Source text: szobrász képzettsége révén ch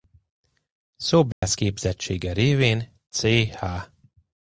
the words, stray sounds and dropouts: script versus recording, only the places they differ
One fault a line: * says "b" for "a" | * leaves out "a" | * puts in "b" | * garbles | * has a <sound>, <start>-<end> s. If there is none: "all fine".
* has a dropout, 1.3-1.4 s